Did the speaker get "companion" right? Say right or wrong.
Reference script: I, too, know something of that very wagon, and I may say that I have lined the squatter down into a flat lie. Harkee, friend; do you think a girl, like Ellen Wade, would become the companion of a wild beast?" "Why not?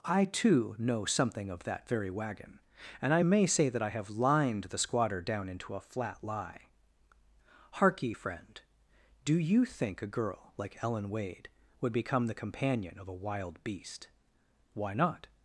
right